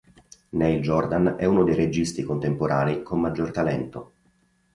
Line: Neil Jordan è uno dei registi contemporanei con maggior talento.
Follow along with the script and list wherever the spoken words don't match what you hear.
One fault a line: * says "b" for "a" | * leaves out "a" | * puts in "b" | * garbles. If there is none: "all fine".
all fine